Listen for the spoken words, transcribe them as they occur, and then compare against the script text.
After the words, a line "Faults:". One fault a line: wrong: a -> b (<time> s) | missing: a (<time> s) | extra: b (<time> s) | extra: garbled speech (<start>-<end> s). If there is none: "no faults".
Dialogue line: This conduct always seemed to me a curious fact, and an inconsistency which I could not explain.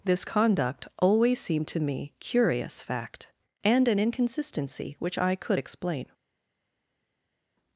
This conduct always seemed to me curious fact, and an inconsistency which I could explain.
Faults:
missing: a (2.1 s)
missing: not (5.6 s)